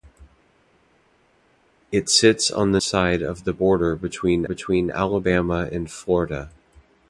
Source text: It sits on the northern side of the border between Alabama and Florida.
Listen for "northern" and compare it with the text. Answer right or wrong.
wrong